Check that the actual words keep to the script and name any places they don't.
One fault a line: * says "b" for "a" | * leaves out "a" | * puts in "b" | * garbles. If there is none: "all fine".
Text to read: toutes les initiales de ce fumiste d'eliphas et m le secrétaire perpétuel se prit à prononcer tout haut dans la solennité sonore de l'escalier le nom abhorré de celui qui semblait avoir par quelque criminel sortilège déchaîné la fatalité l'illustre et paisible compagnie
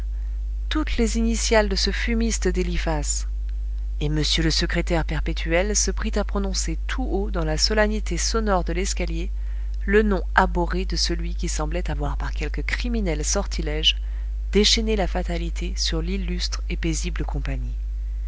* puts in "sur"